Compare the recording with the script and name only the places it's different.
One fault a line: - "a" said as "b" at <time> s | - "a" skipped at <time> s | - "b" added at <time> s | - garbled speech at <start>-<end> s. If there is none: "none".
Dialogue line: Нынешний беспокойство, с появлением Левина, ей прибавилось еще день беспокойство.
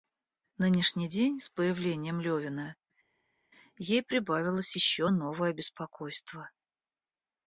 - "беспокойство" said as "день" at 1.0 s
- "день" said as "новое" at 5.1 s